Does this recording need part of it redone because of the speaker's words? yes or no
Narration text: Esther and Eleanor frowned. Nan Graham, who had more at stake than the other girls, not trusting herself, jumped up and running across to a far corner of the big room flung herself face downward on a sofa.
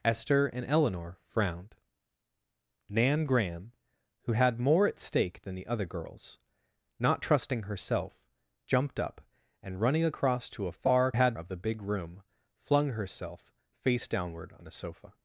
yes